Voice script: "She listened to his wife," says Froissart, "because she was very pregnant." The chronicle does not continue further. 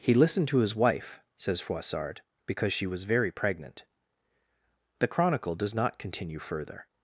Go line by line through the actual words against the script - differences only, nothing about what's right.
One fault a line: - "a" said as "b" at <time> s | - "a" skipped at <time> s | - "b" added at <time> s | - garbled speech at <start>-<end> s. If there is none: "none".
- "She" said as "He" at 0.0 s